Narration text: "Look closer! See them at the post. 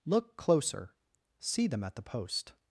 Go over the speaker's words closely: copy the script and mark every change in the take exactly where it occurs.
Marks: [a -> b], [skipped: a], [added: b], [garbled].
"Look closer! See them at the post.